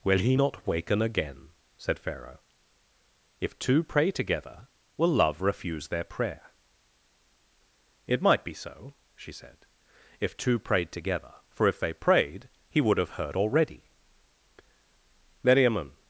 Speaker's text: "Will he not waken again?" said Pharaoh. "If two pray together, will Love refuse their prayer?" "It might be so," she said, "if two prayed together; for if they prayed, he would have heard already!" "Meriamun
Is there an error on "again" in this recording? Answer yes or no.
no